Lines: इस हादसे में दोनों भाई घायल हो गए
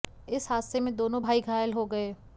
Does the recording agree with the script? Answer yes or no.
yes